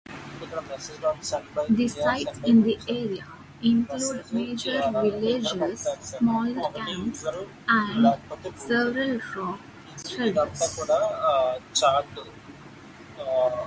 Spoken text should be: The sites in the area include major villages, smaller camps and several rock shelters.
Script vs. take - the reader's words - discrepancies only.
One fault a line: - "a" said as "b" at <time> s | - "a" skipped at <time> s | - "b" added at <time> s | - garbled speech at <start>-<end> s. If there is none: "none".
none